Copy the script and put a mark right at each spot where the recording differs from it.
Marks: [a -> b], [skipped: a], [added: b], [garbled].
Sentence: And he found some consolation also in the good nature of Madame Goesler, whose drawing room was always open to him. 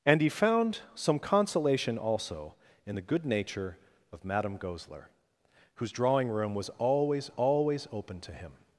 And he found some consolation also in the good nature of Madame Goesler, whose drawing room was always [added: always] open to him.